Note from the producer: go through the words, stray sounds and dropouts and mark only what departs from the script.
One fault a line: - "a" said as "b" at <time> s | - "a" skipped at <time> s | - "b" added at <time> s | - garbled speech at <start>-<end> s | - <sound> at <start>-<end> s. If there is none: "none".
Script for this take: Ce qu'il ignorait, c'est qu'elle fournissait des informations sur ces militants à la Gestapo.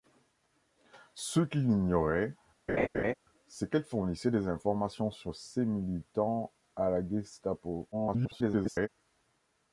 - laugh at 2.7-3.1 s
- garbled speech at 7.9-8.9 s